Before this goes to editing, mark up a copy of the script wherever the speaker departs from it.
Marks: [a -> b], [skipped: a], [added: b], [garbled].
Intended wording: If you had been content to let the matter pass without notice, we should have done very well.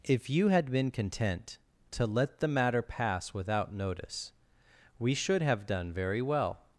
If you had been content to let the matter pass without notice, we should have done very well.